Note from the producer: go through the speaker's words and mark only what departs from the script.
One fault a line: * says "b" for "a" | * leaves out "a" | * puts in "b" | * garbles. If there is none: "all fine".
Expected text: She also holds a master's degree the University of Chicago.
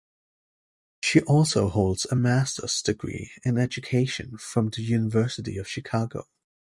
* puts in "in education from"